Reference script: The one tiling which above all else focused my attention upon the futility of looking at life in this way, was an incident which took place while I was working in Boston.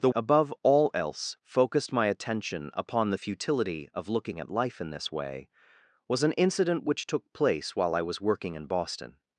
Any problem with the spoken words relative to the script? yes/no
yes